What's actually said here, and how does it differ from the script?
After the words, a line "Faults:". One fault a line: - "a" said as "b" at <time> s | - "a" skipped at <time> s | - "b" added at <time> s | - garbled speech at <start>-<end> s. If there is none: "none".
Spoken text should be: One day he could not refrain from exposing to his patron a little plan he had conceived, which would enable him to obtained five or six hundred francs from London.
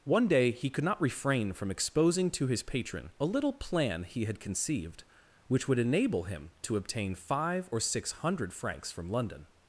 One day he could not refrain from exposing to his patron a little plan he had conceived, which would enable him to obtain five or six hundred francs from London.
Faults:
- "obtained" said as "obtain" at 6.8 s